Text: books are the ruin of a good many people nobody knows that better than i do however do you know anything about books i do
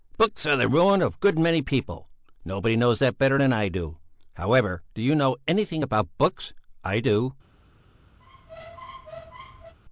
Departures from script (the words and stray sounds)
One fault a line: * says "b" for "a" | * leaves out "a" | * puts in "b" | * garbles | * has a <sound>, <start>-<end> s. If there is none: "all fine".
* has a squeak, 8.2-9.7 s